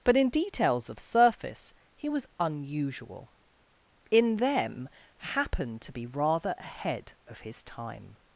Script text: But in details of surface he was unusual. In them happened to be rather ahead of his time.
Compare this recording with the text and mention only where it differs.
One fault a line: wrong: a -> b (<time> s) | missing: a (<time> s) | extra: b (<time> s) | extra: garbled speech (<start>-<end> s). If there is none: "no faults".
no faults